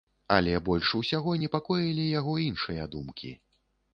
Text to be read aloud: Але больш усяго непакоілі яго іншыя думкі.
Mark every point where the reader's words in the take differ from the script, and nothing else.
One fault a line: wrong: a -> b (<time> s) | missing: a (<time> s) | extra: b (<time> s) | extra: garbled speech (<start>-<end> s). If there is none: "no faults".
no faults